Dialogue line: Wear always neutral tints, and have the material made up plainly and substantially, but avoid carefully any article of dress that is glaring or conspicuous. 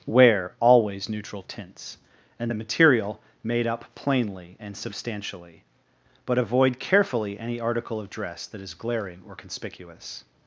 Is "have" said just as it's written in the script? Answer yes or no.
no